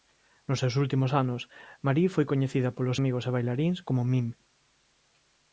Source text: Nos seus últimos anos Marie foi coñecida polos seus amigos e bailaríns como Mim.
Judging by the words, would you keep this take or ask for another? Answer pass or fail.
fail